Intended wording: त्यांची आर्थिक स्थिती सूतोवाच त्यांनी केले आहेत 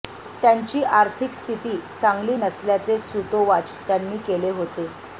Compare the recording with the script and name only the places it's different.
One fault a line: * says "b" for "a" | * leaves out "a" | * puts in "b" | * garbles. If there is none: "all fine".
* puts in "चांगली नसल्याचे"
* says "होते" for "आहेत"